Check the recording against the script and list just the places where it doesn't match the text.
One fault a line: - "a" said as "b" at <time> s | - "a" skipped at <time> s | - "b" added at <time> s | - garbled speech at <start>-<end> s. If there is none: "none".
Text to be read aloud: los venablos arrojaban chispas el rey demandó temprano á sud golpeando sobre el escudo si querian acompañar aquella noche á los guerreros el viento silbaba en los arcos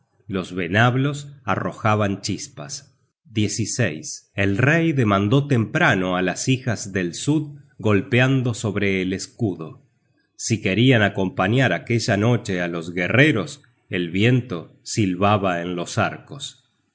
- "las hijas del" added at 6.2 s